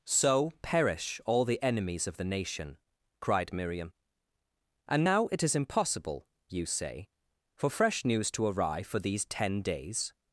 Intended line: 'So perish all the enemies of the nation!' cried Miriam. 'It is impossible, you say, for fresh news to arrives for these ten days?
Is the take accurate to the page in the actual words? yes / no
no